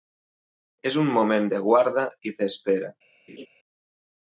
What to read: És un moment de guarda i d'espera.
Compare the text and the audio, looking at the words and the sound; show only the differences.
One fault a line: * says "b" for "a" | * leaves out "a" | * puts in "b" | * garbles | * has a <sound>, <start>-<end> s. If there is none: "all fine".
* has a laugh, 3.3-3.5 s